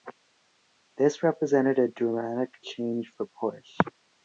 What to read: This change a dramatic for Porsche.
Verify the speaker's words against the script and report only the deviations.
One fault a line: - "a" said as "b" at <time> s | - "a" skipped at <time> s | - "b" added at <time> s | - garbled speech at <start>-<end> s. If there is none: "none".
- "change" said as "represented" at 1.2 s
- "change" added at 2.6 s